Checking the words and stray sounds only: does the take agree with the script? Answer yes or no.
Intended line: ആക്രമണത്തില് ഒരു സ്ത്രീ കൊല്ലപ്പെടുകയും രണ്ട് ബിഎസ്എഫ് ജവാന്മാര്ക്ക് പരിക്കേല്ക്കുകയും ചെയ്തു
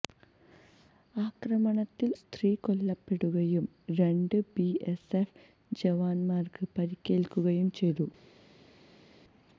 no